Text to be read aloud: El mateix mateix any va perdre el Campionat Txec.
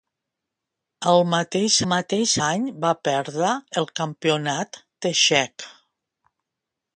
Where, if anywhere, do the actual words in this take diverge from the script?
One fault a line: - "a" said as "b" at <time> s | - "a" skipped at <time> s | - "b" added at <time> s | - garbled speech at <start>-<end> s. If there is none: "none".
none